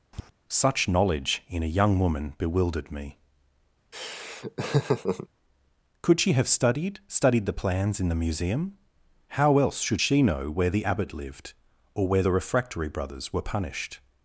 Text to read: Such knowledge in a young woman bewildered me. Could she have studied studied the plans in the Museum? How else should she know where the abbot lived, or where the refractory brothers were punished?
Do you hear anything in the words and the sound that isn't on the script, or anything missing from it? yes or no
yes